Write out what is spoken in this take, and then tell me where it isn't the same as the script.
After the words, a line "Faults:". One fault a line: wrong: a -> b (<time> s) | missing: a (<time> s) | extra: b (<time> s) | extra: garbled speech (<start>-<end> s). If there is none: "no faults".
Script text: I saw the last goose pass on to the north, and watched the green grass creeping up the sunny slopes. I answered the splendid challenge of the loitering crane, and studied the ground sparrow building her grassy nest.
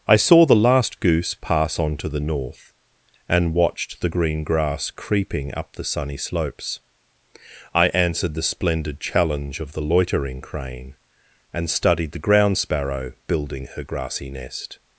I saw the last goose pass on to the north, and watched the green grass creeping up the sunny slopes. I answered the splendid challenge of the loitering crane, and studied the ground sparrow building her grassy nest.
Faults:
no faults